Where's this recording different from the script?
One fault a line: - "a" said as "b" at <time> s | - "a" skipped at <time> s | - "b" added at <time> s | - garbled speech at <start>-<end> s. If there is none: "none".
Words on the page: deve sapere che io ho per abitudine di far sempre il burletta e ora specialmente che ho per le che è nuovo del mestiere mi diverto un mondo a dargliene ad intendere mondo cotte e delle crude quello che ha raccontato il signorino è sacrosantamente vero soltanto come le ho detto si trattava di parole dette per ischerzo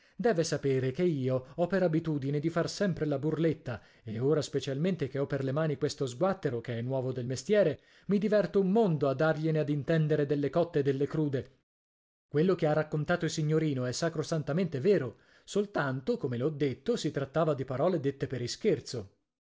- "il" said as "la" at 3.0 s
- "mani questo sguattero" added at 5.5 s
- "mondo" said as "delle" at 10.3 s